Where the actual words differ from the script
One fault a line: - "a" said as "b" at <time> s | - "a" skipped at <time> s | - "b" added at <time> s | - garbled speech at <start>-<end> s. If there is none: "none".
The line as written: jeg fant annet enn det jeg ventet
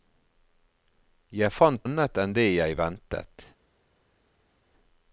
none